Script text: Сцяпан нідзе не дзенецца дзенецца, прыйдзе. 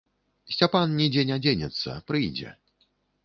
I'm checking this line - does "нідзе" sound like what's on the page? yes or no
yes